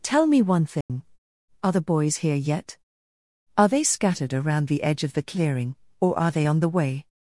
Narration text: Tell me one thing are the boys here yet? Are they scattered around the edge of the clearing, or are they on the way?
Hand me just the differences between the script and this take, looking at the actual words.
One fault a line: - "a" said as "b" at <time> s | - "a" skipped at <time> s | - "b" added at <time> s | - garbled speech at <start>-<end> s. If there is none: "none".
none